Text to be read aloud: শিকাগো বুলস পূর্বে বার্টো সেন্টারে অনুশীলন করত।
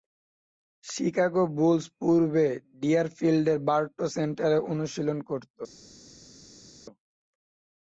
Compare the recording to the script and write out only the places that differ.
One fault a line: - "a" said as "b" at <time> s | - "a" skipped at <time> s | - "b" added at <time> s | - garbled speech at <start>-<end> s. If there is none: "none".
- "ডিয়ারফিল্ডের" added at 2.8 s